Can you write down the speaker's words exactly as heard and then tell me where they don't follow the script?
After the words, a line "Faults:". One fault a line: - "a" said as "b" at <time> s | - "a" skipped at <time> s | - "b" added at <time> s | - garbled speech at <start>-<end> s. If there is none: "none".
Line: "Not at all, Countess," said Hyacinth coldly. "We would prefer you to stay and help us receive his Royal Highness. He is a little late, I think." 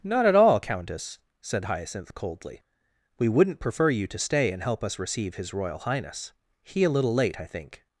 "Not at all, Countess," said Hyacinth coldly. "We wouldn't prefer you to stay and help us receive his Royal Highness. He a little late, I think."
Faults:
- "would" said as "wouldn't" at 3.3 s
- "is" skipped at 6.8 s